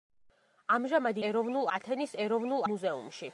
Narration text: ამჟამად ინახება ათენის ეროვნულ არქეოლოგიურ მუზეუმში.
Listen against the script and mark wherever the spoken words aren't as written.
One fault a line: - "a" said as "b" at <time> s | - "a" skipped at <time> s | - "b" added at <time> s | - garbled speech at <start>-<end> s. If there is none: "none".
- "ინახება" said as "ეროვნულ" at 1.3 s
- "არქეოლოგიურ" skipped at 2.6 s